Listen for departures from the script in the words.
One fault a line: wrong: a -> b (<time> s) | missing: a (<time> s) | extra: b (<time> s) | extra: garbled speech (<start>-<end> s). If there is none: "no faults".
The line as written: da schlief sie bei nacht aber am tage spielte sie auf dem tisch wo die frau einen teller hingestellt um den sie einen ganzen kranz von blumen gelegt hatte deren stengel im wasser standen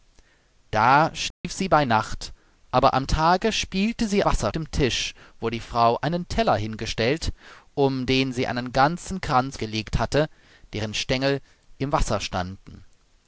wrong: auf -> wasser (4.2 s)
missing: von blumen (9.6 s)